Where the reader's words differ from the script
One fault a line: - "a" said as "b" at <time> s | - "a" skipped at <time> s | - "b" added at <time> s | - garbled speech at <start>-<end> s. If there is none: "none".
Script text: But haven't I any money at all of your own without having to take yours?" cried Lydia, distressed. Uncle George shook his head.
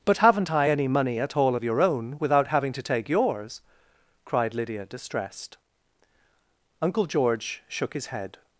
none